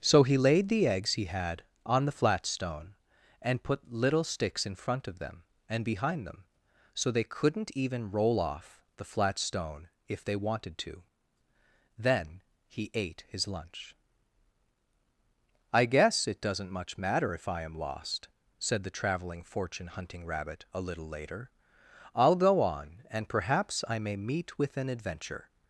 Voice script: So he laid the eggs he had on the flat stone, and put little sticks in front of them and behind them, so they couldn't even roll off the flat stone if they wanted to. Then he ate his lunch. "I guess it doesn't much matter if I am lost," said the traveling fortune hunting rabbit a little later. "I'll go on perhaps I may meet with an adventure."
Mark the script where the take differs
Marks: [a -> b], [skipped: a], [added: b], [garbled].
So he laid the eggs he had on the flat stone, and put little sticks in front of them and behind them, so they couldn't even roll off the flat stone if they wanted to. Then he ate his lunch. "I guess it doesn't much matter if I am lost," said the traveling fortune hunting rabbit a little later. "I'll go on [added: and] perhaps I may meet with an adventure."